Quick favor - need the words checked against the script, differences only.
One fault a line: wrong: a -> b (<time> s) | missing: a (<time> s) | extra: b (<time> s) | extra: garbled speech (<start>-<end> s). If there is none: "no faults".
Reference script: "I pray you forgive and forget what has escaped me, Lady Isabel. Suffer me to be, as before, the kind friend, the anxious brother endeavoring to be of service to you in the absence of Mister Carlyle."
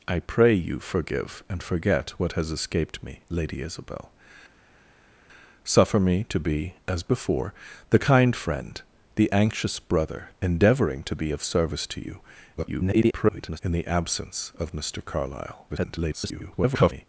extra: garbled speech (12.6-13.6 s)
extra: garbled speech (15.7-17.1 s)